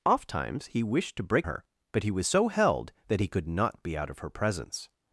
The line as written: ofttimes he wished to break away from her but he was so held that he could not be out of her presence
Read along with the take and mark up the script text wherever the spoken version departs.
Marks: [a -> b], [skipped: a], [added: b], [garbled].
ofttimes he wished to break [skipped: away from] her but he was so held that he could not be out of her presence